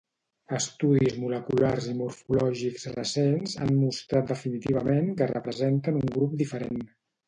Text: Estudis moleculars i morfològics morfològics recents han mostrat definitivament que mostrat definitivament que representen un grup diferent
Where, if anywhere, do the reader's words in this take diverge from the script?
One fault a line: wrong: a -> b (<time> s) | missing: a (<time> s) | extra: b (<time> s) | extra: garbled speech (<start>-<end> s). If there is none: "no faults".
missing: morfològics (2.9 s)
missing: mostrat definitivament que (5.3 s)